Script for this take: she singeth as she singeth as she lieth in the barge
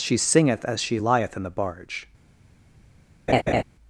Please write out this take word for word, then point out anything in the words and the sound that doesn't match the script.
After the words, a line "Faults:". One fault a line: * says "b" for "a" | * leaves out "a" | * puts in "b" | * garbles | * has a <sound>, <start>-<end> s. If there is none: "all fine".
she singeth as she lieth in the barge
Faults:
* leaves out "singeth as she"
* has a laugh, 3.3-3.6 s